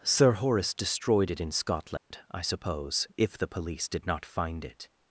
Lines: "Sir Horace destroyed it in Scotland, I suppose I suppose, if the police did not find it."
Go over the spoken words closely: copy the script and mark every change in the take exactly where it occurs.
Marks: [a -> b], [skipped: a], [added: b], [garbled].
"Sir Horace destroyed it in Scotland, I suppose [skipped: I suppose,] if the police did not find it."